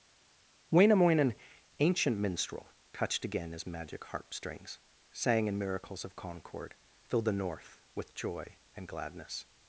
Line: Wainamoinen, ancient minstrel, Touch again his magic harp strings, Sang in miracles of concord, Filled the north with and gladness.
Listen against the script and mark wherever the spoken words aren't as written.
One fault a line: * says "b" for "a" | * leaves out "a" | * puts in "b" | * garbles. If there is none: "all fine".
* says "Touched" for "Touch"
* puts in "joy"